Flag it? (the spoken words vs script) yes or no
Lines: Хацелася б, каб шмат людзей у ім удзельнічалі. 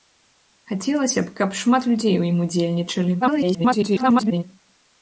yes